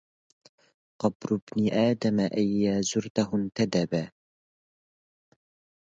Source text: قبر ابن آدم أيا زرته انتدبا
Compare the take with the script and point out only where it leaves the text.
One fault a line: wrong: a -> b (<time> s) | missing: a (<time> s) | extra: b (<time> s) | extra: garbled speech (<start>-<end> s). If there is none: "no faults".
no faults